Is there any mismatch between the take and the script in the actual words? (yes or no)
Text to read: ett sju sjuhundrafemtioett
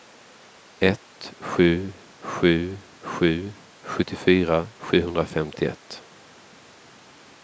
yes